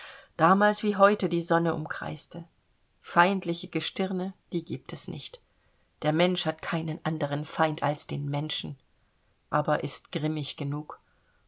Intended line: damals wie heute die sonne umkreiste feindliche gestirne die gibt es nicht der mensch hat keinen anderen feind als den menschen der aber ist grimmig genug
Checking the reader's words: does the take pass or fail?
fail